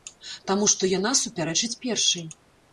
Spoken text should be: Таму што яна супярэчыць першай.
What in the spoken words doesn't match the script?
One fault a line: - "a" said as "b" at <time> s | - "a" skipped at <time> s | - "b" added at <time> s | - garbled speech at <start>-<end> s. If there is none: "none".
none